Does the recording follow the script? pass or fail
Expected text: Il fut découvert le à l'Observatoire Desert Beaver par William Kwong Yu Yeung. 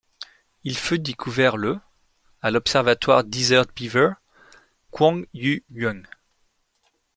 fail